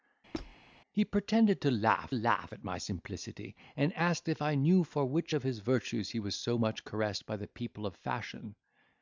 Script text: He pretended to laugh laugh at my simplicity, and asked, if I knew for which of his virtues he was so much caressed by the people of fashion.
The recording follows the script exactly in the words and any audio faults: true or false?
false